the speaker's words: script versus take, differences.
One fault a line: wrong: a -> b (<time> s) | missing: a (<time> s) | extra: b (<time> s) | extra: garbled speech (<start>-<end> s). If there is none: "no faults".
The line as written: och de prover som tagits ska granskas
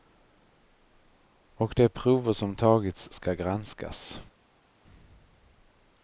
no faults